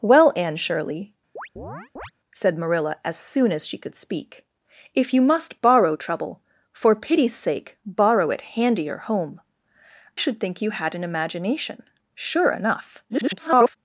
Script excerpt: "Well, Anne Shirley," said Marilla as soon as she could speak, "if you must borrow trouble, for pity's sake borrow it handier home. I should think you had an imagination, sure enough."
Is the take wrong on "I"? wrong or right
wrong